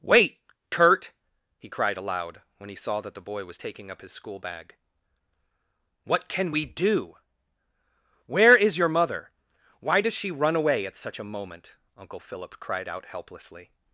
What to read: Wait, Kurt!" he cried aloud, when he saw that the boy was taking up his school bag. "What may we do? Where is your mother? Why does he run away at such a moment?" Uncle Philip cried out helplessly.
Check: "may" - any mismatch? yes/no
yes